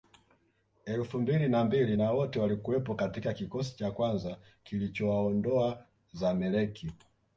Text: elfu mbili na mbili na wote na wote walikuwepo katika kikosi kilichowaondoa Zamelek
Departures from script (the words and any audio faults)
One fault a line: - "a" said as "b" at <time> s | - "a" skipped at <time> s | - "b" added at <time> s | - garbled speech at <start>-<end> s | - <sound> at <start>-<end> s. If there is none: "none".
- "na wote" skipped at 2.4 s
- "cha kwanza" added at 3.8 s